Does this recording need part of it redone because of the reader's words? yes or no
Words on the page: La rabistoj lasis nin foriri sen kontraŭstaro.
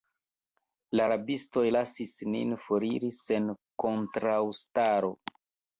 no